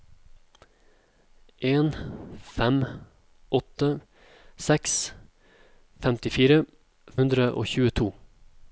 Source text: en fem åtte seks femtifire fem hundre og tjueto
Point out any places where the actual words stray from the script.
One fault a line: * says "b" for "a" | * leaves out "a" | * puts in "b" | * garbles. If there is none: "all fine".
* leaves out "fem"